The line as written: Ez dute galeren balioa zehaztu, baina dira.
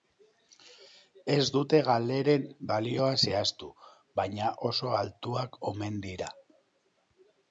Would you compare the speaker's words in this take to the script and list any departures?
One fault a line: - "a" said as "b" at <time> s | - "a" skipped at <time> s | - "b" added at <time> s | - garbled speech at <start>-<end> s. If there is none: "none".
- "oso altuak omen" added at 4.7 s